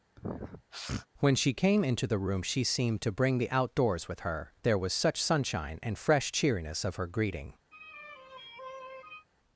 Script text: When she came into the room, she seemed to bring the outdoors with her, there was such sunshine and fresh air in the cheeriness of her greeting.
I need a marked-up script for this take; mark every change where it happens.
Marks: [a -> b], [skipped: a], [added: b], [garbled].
When she came into the room, she seemed to bring the outdoors with her, there was such sunshine and fresh [skipped: air in the] cheeriness of her greeting.